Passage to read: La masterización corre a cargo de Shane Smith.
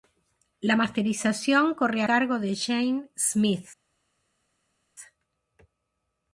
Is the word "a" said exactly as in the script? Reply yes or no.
no